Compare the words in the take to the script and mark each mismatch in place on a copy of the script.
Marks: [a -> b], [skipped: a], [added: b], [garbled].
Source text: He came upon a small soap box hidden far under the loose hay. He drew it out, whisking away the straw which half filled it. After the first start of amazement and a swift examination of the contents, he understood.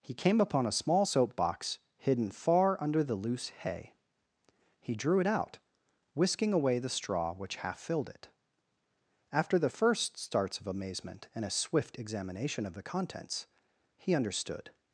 He came upon a small soap box hidden far under the loose hay. He drew it out, whisking away the straw which half filled it. After the first [start -> starts] of amazement and a swift examination of the contents, he understood.